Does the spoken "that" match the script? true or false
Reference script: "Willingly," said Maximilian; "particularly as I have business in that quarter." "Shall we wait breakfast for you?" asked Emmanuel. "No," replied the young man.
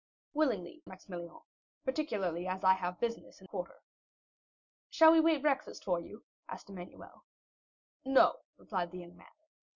false